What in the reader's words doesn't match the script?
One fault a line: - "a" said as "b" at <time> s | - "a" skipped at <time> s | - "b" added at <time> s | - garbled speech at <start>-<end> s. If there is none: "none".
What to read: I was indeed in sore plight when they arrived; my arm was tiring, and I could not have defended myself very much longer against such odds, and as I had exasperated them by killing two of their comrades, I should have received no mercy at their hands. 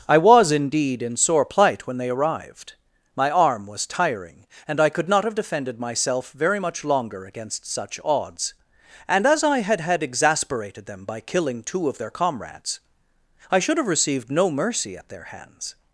- "had" added at 9.8 s